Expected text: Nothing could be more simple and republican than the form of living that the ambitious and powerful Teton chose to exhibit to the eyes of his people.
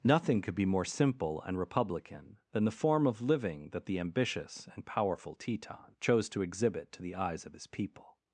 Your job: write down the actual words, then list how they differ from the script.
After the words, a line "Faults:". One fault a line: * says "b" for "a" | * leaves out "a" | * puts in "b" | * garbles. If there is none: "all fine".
Nothing could be more simple and republican than the form of living that the ambitious and powerful Teton chose to exhibit to the eyes of his people.
Faults:
all fine